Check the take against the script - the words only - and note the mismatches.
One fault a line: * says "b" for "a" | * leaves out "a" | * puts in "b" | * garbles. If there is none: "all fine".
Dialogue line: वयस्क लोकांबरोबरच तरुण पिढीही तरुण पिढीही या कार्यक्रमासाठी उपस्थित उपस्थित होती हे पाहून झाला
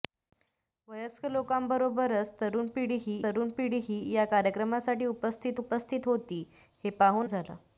all fine